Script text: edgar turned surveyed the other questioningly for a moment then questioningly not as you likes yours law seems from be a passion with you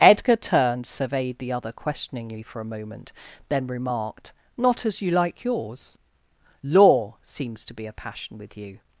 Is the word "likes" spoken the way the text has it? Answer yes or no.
no